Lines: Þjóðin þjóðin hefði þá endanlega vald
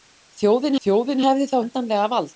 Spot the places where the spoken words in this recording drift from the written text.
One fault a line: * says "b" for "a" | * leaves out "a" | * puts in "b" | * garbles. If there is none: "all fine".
all fine